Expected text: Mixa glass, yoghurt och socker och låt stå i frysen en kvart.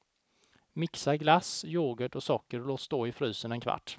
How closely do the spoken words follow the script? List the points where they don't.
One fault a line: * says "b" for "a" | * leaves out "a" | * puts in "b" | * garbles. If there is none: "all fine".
all fine